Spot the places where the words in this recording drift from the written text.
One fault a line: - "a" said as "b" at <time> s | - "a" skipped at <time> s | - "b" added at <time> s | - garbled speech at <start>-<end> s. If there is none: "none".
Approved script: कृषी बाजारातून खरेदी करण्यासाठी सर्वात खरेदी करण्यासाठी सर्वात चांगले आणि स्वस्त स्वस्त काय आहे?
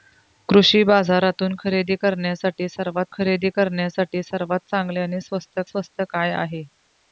none